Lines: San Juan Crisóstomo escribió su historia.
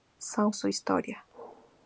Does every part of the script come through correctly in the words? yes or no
no